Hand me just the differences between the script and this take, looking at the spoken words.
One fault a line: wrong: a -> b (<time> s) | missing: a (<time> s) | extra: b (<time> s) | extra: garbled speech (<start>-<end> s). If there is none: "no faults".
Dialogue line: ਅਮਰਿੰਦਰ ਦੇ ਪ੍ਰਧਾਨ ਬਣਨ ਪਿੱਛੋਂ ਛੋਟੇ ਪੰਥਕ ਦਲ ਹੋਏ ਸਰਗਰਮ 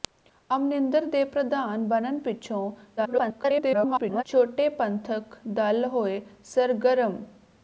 extra: garbled speech (3.0-4.2 s)